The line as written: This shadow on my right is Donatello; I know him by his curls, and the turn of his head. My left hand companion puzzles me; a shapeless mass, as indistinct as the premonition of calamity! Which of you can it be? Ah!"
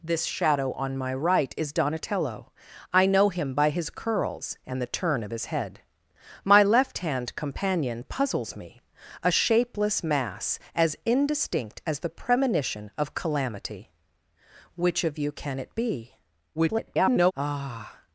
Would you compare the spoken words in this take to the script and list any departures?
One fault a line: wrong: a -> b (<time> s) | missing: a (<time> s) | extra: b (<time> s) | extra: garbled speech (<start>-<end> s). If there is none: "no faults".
extra: garbled speech (16.5-17.3 s)